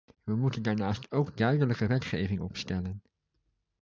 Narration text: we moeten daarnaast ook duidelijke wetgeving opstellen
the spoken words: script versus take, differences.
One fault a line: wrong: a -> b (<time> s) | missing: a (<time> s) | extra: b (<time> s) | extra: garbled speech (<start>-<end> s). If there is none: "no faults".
no faults